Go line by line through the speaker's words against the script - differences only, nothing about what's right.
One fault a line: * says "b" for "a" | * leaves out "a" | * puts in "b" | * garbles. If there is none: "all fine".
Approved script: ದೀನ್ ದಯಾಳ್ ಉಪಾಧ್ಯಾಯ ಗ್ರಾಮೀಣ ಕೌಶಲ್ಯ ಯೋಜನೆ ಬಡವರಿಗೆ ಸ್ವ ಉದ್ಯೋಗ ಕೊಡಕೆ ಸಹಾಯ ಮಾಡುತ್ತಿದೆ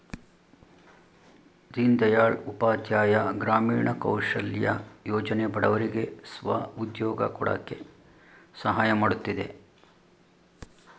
all fine